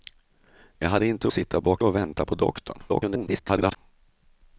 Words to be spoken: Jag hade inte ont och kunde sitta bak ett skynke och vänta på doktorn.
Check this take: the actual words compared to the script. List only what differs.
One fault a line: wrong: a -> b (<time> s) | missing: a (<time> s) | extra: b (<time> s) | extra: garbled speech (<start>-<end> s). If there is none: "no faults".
missing: ont och kunde (1.3 s)
missing: ett skynke (1.8 s)
extra: garbled speech (2.9-3.8 s)